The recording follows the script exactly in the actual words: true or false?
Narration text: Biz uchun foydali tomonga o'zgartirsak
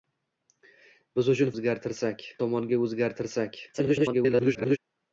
false